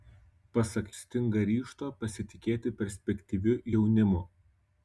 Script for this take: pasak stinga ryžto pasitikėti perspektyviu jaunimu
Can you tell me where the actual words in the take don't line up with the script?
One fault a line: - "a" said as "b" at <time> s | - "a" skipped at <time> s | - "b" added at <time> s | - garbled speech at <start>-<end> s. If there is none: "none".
none